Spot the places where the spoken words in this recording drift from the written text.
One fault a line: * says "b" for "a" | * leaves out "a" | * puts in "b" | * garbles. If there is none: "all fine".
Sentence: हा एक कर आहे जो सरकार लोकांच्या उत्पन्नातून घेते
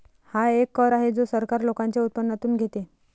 all fine